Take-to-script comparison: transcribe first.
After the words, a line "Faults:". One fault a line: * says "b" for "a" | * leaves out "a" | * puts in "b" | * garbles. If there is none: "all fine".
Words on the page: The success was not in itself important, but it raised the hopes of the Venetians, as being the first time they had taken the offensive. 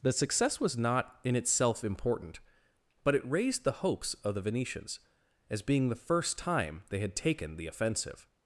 The success was not in itself important, but it raised the hopes of the Venetians, as being the first time they had taken the offensive.
Faults:
all fine